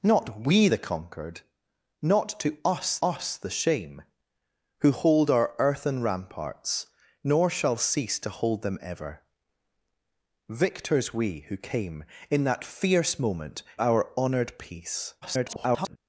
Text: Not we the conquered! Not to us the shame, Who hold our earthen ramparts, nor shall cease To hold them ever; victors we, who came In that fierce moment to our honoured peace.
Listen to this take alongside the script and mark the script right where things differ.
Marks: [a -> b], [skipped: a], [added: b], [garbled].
Not we the conquered! Not to us [added: us] the shame, Who hold our earthen ramparts, nor shall cease To hold them ever; victors we, who came In that fierce moment [skipped: to] our honoured peace. [garbled]